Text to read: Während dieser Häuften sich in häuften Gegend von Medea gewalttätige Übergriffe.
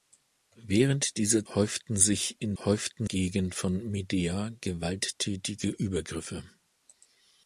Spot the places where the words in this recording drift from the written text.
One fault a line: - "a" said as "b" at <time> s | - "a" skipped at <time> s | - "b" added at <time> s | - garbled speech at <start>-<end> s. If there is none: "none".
none